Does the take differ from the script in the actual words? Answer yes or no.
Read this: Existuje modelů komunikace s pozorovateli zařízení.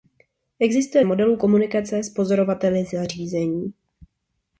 no